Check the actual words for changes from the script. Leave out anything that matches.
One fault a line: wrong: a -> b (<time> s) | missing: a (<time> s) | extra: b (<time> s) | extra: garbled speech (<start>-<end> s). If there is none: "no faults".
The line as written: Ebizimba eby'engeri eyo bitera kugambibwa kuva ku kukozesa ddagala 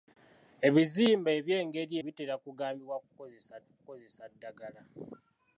missing: eyo (1.9 s)
wrong: kuva -> kukozesa (3.0 s)